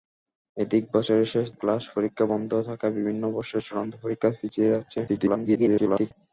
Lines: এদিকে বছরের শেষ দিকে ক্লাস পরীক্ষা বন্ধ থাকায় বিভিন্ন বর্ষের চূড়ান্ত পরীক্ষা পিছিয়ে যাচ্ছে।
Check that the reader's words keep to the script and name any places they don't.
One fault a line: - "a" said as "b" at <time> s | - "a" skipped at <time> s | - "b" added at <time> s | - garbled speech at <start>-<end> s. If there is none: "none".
- "দিকে" skipped at 1.5 s
- garbled speech at 5.1-6.1 s